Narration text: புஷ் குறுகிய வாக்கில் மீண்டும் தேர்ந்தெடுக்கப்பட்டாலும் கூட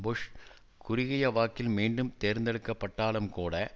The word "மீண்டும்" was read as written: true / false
true